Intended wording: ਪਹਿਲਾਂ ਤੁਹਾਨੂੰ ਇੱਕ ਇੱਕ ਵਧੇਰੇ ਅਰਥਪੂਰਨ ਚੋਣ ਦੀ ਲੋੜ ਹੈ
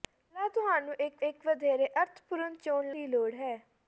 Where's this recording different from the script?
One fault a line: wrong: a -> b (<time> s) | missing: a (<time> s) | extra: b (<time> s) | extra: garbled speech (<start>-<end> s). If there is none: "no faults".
no faults